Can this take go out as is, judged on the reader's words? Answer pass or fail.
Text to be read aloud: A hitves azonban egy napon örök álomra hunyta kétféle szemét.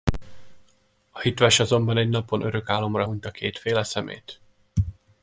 pass